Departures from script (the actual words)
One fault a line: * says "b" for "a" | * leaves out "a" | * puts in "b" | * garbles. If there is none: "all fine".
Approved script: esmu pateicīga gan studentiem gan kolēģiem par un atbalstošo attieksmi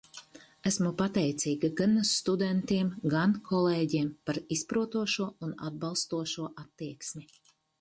* puts in "izprotošo"